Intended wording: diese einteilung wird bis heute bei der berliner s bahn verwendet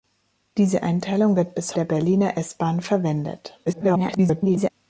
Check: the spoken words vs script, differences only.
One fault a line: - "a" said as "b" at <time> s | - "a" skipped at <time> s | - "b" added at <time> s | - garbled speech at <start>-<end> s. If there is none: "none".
- "heute bei" skipped at 1.8 s
- garbled speech at 3.7-4.7 s